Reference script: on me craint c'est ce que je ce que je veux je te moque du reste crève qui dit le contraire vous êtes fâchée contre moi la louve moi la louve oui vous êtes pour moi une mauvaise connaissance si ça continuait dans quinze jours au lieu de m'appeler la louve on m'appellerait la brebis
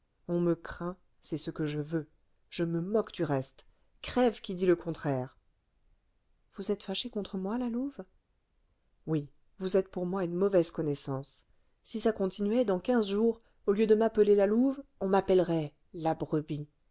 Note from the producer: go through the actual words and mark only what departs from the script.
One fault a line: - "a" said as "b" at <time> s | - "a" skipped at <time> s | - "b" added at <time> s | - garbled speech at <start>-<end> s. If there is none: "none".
- "ce que je" skipped at 1.8 s
- "te" said as "me" at 2.6 s
- "moi la louve" skipped at 8.0 s